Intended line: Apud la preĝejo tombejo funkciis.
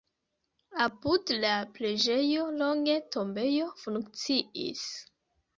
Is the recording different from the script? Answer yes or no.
yes